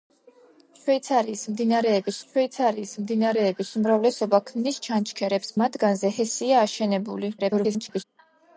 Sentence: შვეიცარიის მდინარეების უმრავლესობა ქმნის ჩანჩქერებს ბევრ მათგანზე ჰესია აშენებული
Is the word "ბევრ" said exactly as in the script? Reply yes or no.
no